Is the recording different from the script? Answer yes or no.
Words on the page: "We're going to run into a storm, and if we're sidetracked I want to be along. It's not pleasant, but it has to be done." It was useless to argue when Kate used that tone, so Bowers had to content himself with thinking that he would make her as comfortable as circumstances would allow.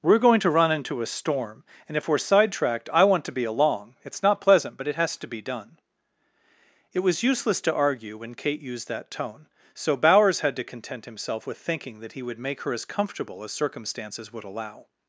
no